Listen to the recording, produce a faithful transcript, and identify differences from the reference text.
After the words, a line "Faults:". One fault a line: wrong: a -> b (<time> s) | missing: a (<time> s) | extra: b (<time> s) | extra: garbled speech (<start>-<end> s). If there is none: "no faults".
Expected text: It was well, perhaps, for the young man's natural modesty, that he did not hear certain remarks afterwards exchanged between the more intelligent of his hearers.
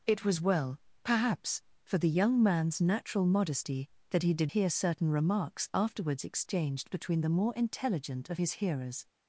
It was well, perhaps, for the young man's natural modesty, that he did hear certain remarks afterwards exchanged between the more intelligent of his hearers.
Faults:
missing: not (4.5 s)